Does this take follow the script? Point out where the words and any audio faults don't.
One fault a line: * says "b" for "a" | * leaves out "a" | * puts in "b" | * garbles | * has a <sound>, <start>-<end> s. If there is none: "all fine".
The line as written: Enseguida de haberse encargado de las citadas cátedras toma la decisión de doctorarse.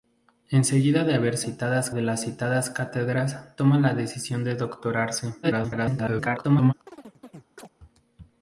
* says "citadas" for "encargado"
* garbles
* has a chirp, 6.9-7.7 s